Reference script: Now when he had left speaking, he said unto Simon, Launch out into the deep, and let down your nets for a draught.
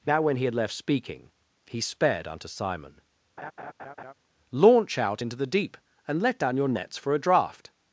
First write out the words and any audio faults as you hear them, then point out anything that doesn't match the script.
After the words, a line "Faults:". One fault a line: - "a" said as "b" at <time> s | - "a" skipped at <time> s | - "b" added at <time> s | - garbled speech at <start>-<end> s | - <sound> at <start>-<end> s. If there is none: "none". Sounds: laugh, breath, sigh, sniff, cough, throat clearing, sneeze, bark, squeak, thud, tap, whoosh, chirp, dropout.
Now when he had left speaking, he sped unto Simon, Launch out into the deep, and let down your nets for a draught.
Faults:
- "said" said as "sped" at 1.8 s
- laugh at 3.4-4.1 s